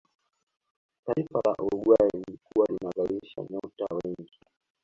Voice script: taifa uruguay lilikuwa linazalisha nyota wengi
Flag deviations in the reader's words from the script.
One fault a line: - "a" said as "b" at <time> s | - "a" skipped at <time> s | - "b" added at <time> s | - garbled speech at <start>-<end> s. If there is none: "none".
- "la" added at 1.4 s